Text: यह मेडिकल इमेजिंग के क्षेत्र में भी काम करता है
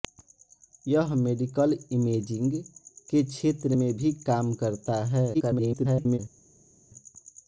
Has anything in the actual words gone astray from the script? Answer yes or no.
yes